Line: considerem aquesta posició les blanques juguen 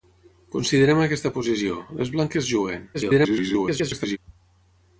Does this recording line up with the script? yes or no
no